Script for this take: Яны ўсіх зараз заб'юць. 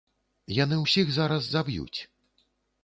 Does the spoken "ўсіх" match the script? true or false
true